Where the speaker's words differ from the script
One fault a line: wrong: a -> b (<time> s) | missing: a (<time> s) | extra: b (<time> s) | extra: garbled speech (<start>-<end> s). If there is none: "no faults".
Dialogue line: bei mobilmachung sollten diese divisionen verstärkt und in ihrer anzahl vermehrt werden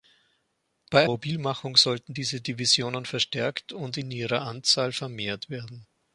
no faults